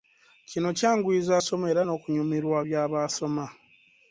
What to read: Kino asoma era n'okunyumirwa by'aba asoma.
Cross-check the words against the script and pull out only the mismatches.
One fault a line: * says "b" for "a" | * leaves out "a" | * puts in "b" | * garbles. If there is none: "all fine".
* puts in "kyanguyiza"